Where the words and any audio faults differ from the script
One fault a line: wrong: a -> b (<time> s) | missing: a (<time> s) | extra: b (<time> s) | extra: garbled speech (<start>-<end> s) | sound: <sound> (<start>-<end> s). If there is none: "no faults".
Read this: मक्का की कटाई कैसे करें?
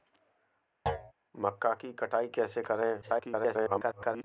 sound: thud (0.9-1.1 s)
extra: garbled speech (3.0-4.2 s)